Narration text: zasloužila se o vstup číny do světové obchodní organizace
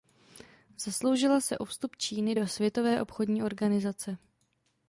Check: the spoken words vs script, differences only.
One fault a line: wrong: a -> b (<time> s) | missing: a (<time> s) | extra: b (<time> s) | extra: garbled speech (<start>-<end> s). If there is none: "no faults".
no faults